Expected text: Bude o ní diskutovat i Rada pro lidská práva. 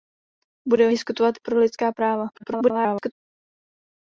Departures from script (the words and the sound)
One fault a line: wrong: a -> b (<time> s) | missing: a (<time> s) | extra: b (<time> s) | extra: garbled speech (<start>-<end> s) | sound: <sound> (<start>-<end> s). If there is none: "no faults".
missing: ní (0.9 s)
missing: Rada (1.5 s)
extra: garbled speech (2.3-3.1 s)